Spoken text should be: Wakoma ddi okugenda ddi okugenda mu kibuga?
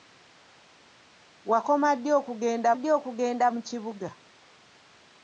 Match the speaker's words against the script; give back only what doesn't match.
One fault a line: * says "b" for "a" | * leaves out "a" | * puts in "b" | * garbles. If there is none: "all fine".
all fine